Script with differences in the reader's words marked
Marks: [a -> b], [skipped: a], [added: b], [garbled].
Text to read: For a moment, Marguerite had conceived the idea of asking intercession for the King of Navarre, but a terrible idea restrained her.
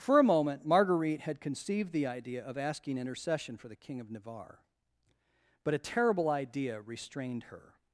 For a moment, Marguerite had conceived the idea of asking intercession for the King of Navarre, but a terrible idea restrained her.